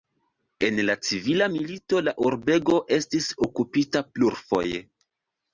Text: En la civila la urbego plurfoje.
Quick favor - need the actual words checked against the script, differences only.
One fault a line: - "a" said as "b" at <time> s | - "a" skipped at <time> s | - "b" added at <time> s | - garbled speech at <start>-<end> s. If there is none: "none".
- "milito" added at 1.5 s
- "estis okupita" added at 3.0 s